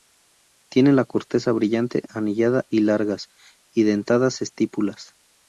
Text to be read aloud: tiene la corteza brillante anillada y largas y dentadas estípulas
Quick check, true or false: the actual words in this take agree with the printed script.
true